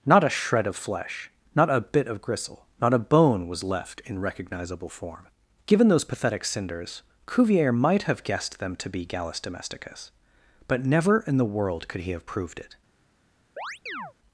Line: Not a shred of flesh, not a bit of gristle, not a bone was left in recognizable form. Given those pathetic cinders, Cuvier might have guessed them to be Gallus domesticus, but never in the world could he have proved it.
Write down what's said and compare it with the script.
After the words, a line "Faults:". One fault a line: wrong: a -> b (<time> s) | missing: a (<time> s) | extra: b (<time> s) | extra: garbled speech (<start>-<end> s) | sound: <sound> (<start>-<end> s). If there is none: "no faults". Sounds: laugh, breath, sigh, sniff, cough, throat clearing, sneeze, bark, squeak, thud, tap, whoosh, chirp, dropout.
Not a shred of flesh, not a bit of gristle, not a bone was left in recognizable form. Given those pathetic cinders, Cuvier might have guessed them to be Gallus domesticus, but never in the world could he have proved it.
Faults:
sound: chirp (13.6-14.1 s)